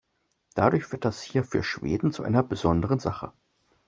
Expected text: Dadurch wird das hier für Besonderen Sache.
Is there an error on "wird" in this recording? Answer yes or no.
no